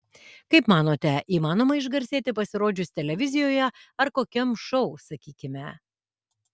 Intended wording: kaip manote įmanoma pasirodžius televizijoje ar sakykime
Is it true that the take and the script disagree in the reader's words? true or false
true